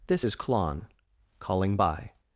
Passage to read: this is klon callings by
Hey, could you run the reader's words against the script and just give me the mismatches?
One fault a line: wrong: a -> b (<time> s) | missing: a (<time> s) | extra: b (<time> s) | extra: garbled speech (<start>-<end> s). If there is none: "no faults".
wrong: callings -> calling (1.4 s)